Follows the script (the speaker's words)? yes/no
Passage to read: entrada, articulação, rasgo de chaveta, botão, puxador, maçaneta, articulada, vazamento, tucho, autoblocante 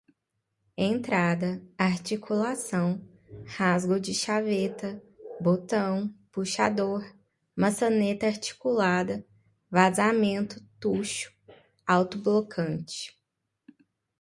yes